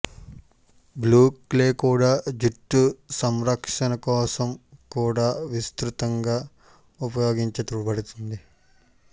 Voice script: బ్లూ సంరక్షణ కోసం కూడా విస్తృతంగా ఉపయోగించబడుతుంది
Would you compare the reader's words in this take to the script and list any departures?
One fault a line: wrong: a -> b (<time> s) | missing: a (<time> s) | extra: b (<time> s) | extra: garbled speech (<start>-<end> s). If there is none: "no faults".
extra: క్లే కూడా జుట్టు (1.5 s)